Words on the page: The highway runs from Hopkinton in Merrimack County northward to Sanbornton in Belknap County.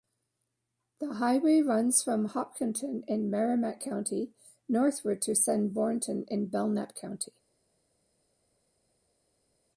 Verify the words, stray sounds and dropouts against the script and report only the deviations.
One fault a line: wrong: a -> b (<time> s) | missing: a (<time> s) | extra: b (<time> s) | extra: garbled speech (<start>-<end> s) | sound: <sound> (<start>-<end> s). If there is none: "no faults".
no faults